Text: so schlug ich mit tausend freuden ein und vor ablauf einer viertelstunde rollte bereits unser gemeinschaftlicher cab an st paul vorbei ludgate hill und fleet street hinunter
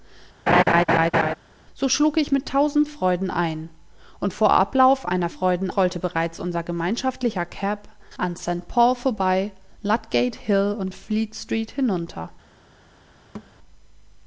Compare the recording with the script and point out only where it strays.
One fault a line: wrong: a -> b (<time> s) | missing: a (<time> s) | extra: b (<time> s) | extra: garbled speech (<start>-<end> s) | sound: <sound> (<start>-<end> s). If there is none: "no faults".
sound: laugh (0.5-1.4 s)
wrong: viertelstunde -> freuden (5.3 s)
sound: thud (13.3-13.5 s)